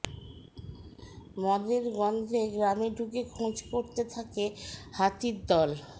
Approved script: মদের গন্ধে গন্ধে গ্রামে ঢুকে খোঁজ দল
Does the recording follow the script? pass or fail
fail